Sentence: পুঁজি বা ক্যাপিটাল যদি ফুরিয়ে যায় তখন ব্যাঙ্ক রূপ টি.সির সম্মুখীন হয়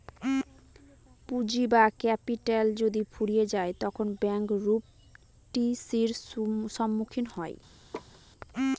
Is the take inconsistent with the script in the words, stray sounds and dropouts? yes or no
yes